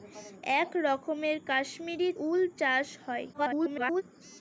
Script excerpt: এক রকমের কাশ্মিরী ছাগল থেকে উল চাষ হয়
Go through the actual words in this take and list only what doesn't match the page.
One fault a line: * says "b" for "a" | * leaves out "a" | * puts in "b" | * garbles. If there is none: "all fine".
* leaves out "ছাগল থেকে"
* garbles